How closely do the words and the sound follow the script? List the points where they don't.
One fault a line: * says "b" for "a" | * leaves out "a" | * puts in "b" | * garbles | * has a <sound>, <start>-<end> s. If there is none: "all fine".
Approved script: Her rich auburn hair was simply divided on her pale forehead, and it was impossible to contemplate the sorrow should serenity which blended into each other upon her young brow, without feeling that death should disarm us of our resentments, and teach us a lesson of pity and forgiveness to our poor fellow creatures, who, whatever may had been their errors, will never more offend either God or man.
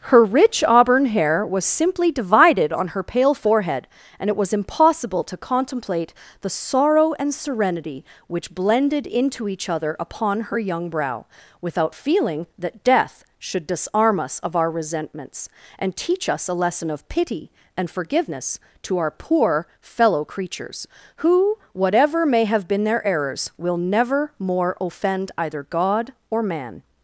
* says "and" for "should"
* says "have" for "had"